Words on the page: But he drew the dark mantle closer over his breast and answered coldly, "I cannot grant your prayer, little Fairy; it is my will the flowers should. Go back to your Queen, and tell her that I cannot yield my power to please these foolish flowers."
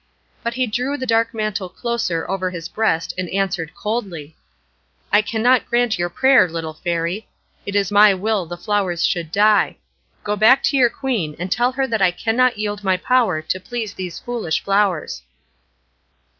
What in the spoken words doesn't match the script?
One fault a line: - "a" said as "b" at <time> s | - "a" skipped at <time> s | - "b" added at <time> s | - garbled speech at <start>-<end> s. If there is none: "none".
- "die" added at 9.3 s